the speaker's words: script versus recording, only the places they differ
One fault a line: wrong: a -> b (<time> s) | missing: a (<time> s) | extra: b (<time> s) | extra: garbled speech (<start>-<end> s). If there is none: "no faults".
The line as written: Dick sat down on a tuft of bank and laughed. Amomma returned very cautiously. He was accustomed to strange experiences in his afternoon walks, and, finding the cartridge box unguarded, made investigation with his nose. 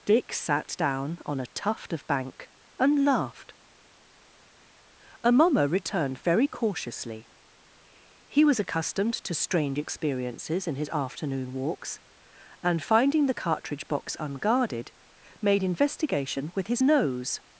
no faults